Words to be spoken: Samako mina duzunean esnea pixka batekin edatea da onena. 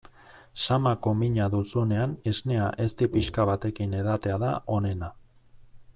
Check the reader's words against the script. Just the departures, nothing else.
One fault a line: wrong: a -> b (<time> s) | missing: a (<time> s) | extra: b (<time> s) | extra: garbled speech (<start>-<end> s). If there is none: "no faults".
extra: ezti (2.9 s)